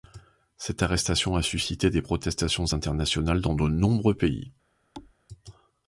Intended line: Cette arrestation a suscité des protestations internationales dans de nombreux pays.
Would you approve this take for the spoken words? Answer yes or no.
yes